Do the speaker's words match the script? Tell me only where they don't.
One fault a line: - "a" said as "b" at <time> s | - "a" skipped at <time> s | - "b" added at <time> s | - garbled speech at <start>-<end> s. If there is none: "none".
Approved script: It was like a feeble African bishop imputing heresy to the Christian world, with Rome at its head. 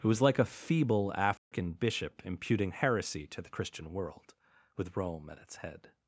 none